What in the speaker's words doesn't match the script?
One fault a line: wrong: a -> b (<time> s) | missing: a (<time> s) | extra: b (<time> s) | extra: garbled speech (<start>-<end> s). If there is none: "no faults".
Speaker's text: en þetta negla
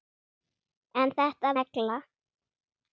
no faults